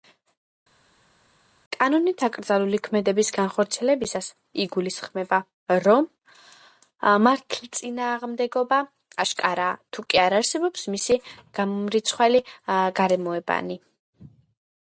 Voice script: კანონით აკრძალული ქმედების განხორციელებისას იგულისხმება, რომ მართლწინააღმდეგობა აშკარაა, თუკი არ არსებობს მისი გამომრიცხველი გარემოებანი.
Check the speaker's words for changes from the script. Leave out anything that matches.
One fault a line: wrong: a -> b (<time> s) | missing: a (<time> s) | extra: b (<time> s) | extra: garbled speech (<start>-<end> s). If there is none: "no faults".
no faults